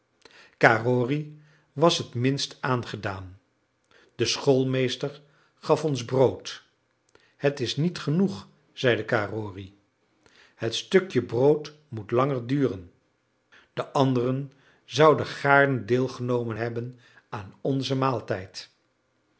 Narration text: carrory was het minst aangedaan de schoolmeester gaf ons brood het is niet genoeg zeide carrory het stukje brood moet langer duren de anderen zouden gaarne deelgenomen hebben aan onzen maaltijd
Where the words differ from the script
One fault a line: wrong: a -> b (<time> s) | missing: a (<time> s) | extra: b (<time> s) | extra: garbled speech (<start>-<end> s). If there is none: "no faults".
no faults